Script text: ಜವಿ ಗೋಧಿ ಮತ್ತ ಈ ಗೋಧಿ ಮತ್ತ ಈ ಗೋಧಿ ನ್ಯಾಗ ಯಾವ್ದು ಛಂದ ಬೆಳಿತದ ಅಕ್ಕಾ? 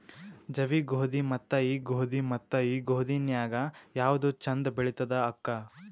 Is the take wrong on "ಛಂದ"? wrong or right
right